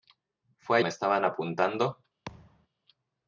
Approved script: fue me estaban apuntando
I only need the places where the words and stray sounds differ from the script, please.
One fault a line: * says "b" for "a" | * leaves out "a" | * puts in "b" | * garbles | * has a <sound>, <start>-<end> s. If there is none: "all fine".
* has a thud, 2.3-2.7 s